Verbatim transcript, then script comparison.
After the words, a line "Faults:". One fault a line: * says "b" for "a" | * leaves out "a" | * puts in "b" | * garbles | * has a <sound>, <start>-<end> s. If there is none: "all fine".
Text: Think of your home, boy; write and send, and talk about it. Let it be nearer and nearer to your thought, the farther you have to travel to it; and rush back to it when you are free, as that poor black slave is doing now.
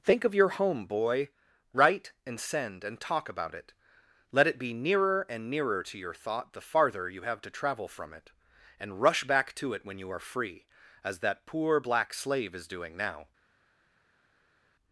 Think of your home, boy; write and send, and talk about it. Let it be nearer and nearer to your thought, the farther you have to travel from it; and rush back to it when you are free, as that poor black slave is doing now.
Faults:
* says "from" for "to"